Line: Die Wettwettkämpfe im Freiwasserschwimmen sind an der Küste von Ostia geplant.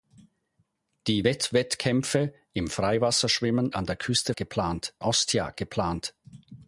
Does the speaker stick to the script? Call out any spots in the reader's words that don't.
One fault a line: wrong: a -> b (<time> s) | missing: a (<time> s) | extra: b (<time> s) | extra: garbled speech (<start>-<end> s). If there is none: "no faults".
missing: sind (3.7 s)
wrong: von -> geplant (4.3 s)